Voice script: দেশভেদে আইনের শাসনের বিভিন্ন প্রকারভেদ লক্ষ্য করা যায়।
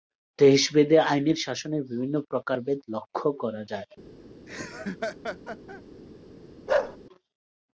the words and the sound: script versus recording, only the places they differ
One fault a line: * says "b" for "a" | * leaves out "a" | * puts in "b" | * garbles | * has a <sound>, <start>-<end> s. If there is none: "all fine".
* has a laugh, 4.5-5.8 s
* has a bark, 6.7-7.0 s